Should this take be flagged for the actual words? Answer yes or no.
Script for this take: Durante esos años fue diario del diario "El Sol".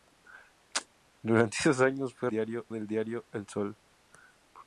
no